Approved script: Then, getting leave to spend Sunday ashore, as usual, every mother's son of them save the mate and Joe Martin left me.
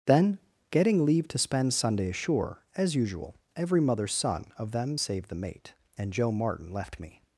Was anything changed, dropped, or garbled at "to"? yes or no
no